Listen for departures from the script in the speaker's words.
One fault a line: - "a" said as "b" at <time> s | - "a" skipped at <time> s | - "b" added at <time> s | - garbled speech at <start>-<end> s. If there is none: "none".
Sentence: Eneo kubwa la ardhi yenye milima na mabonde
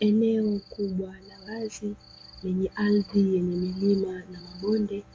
- "wazi lenye" added at 1.5 s